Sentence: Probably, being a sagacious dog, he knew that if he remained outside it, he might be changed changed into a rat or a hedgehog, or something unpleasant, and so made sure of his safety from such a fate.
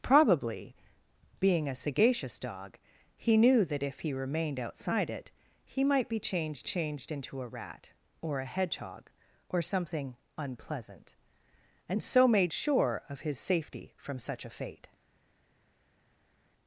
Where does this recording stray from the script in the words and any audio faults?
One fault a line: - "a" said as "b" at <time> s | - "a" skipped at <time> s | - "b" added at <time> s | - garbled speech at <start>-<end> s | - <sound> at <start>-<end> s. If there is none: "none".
none